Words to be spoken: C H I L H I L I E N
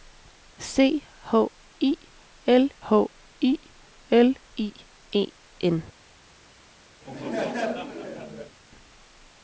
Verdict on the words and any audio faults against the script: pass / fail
fail